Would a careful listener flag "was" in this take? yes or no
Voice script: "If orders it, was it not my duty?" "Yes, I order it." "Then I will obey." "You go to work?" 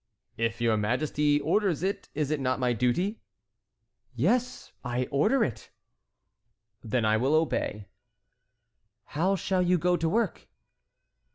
yes